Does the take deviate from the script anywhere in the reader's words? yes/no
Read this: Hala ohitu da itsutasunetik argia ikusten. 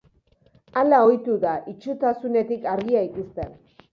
no